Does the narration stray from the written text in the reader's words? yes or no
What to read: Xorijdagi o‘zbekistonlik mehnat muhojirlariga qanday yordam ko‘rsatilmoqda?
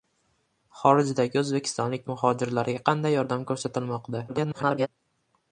yes